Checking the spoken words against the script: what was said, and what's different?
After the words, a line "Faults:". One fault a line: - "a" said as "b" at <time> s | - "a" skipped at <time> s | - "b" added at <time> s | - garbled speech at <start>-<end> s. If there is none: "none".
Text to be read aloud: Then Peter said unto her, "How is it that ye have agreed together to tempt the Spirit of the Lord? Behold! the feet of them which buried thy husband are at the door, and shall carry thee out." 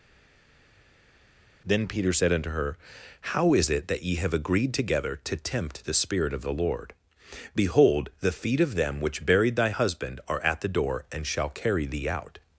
Then Peter said unto her, "How is it that ye have agreed together to tempt the Spirit of the Lord? Behold! the feet of them which buried thy husband are at the door, and shall carry thee out."
Faults:
none